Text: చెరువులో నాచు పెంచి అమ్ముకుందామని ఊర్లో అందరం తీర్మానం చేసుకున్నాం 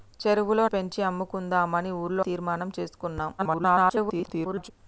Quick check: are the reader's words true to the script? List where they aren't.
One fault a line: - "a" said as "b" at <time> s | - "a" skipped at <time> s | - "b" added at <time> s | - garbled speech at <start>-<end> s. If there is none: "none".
- "నాచు" skipped at 0.6 s
- "అందరం" skipped at 2.2 s
- garbled speech at 3.4-4.7 s